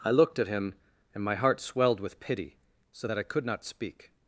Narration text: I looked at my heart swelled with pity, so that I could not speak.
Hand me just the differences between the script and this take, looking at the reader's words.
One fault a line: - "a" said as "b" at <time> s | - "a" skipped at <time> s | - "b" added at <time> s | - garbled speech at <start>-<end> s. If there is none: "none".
- "him and" added at 0.5 s